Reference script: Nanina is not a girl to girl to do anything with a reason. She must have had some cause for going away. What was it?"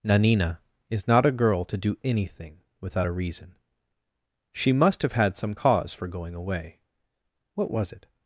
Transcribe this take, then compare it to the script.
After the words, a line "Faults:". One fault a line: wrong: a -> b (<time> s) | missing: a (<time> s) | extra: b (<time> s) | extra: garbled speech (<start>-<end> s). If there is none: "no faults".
Nanina is not a girl to do anything without a reason. She must have had some cause for going away. What was it?"
Faults:
missing: girl to (1.8 s)
wrong: with -> without (2.8 s)